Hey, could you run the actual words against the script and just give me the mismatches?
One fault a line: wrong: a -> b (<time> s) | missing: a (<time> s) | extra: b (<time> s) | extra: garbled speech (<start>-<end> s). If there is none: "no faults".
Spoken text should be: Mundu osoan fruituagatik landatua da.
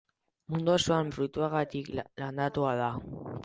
no faults